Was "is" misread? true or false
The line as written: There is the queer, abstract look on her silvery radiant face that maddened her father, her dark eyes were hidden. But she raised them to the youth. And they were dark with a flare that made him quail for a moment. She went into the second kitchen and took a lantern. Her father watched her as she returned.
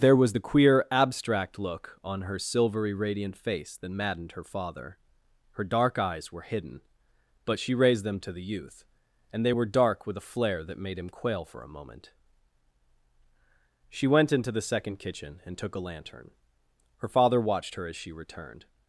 true